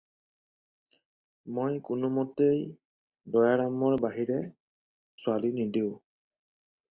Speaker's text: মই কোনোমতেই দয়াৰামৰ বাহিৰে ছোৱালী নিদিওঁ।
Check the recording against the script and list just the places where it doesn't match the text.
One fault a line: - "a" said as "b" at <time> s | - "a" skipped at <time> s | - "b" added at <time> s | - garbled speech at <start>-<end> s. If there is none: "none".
none